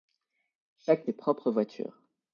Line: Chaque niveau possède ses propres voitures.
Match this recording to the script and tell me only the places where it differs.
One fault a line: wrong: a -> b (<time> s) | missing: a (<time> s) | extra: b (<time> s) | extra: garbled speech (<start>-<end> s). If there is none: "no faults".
missing: niveau possède (1.1 s)